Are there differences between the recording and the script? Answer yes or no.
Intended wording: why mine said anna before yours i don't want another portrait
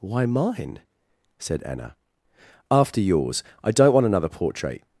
yes